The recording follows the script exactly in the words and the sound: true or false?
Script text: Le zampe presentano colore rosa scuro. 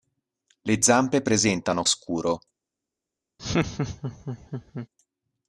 false